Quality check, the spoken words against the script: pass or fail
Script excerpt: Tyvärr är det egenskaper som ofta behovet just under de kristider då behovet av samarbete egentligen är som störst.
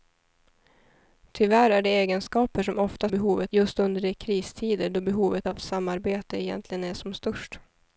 pass